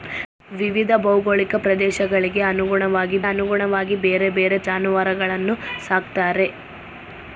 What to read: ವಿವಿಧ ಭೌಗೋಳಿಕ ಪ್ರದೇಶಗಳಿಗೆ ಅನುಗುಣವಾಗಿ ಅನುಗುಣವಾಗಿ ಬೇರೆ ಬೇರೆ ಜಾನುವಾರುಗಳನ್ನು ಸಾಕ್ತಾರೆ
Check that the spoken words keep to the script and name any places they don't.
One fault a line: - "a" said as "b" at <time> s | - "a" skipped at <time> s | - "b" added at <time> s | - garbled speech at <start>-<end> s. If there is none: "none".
none